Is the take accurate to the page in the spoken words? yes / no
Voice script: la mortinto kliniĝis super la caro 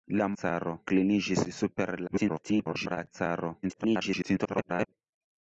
no